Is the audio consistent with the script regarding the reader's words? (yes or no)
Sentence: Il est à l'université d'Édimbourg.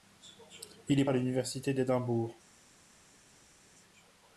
yes